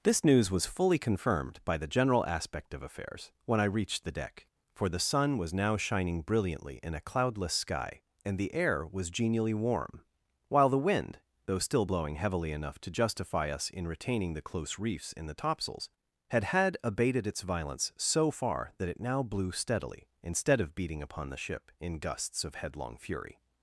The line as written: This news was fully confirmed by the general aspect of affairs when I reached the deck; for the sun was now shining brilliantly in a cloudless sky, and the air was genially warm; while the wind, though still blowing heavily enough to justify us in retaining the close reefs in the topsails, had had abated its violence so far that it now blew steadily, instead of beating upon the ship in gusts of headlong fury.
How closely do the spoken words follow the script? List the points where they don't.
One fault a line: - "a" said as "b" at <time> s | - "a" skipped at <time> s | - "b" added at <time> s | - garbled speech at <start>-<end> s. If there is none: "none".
none